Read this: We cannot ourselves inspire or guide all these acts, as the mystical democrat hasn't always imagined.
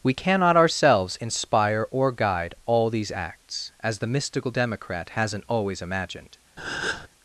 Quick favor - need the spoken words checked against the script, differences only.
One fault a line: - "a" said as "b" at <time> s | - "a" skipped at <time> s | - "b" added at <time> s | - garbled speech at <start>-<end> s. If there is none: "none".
none